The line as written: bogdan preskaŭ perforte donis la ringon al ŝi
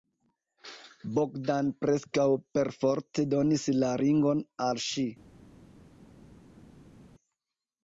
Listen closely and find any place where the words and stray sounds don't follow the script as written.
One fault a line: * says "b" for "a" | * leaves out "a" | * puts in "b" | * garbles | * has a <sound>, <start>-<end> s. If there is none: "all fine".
all fine